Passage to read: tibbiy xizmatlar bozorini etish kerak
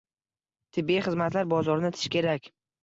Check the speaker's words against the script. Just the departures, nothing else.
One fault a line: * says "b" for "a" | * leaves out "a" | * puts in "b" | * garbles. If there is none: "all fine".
all fine